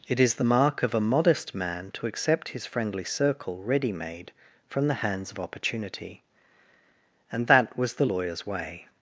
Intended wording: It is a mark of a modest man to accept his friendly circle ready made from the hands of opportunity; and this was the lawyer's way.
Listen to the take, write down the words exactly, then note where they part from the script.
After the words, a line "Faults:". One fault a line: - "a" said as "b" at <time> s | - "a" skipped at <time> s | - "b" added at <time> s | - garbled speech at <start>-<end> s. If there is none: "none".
It is the mark of a modest man to accept his friendly circle ready made from the hands of opportunity; and that was the lawyer's way.
Faults:
- "a" said as "the" at 0.3 s
- "this" said as "that" at 7.5 s